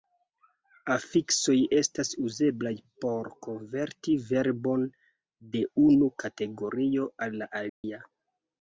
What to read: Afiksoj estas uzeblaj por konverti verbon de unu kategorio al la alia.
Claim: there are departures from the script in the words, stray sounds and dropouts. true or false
true